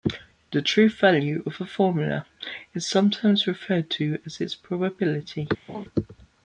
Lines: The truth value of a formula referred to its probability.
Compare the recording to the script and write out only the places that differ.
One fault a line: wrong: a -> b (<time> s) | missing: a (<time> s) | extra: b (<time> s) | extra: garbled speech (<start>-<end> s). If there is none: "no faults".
extra: is sometimes (2.7 s)
extra: as (4.2 s)